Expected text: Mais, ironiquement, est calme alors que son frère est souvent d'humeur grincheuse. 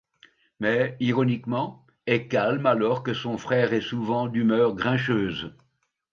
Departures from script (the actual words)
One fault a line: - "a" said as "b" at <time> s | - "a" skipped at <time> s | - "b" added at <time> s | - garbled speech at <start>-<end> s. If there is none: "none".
none